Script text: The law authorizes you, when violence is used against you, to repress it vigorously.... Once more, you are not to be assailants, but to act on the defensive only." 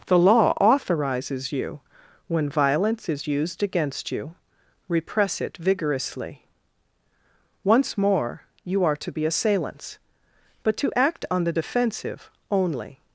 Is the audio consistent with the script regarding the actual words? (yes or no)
no